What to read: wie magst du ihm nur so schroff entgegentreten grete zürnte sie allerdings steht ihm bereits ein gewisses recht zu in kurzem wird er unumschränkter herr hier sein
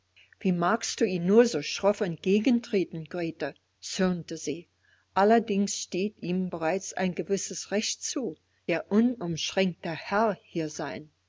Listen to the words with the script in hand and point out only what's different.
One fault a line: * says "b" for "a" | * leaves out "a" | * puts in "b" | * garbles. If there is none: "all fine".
* leaves out "in kurzem wird"